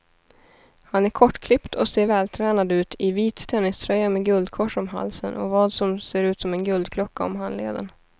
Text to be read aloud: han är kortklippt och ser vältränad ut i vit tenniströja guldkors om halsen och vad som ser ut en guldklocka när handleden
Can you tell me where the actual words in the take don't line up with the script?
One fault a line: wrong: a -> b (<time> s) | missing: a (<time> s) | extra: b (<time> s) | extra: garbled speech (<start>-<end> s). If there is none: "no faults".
extra: med (4.1 s)
extra: som (6.4 s)
wrong: när -> om (7.2 s)